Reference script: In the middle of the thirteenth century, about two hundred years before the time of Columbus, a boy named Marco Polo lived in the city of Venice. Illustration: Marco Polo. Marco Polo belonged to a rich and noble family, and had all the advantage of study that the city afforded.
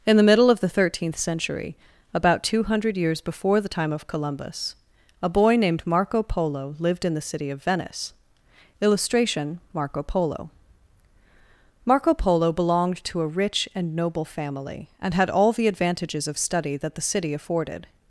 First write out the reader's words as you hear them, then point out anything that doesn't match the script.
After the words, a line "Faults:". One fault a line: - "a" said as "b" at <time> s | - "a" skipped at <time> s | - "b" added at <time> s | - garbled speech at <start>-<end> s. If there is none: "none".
In the middle of the thirteenth century, about two hundred years before the time of Columbus, a boy named Marco Polo lived in the city of Venice. Illustration: Marco Polo. Marco Polo belonged to a rich and noble family, and had all the advantages of study that the city afforded.
Faults:
- "advantage" said as "advantages" at 15.7 s